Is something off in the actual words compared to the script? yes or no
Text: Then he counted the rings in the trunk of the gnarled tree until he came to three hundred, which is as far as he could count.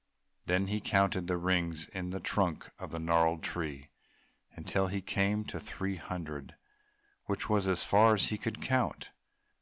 yes